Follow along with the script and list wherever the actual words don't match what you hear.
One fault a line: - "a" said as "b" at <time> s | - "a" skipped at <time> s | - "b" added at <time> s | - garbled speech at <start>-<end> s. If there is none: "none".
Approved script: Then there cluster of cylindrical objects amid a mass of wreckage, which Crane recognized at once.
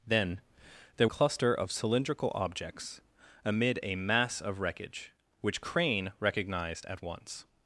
none